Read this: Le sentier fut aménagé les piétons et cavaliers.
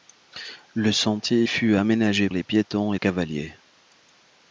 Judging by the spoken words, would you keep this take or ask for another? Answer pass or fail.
pass